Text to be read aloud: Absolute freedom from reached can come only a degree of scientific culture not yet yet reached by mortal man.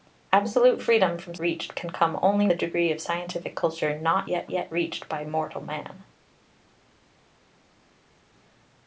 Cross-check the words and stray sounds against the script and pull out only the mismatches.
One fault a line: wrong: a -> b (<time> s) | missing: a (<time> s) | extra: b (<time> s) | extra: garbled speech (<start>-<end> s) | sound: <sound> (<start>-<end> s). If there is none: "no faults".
no faults